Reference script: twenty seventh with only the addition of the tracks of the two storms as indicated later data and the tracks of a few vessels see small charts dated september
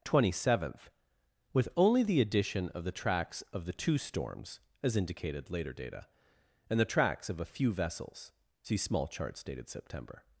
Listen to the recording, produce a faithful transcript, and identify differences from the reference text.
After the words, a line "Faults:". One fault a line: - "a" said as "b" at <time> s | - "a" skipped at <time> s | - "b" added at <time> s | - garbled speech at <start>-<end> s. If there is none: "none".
twenty seventh with only the addition of the tracks of the two storms as indicated later data and the tracks of a few vessels see small charts dated september
Faults:
none